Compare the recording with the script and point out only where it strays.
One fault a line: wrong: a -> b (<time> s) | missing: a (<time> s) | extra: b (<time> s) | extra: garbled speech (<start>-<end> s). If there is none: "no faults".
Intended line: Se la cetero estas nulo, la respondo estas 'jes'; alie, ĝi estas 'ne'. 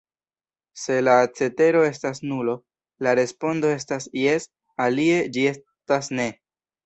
no faults